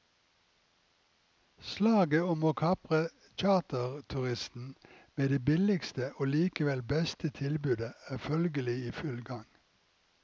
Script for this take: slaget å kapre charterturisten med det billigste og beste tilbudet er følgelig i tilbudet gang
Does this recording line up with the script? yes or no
no